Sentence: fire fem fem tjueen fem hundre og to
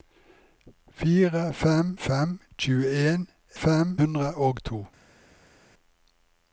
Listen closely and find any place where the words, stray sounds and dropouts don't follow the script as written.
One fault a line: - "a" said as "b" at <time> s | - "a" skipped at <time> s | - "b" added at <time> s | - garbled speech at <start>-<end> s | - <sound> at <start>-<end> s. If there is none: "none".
none